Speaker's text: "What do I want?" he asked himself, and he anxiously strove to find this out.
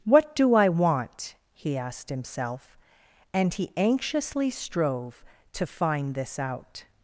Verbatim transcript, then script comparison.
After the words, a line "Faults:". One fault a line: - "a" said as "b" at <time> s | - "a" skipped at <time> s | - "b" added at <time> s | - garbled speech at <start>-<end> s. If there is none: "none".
"What do I want?" he asked himself, and he anxiously strove to find this out.
Faults:
none